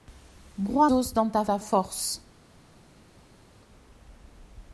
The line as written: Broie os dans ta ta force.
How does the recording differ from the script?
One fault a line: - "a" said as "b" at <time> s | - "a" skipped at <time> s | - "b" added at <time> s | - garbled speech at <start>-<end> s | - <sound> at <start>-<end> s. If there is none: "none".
none